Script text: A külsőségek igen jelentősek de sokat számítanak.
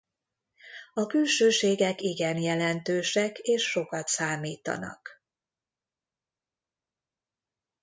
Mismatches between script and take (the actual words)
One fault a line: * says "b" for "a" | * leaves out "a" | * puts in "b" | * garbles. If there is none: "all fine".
* says "és" for "de"